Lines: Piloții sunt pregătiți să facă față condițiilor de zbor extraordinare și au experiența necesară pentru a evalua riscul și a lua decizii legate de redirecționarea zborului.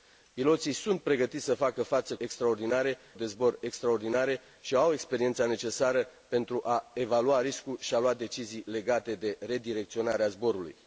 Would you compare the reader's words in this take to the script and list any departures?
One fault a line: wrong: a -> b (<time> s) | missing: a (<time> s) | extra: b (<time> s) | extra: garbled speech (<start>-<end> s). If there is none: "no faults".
wrong: condițiilor -> extraordinare (2.2 s)